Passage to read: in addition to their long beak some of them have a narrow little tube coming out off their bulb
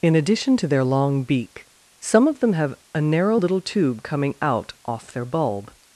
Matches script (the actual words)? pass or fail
pass